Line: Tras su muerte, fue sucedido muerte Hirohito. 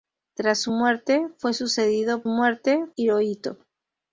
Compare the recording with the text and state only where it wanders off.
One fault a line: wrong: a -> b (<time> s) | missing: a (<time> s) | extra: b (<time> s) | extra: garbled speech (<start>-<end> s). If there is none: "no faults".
no faults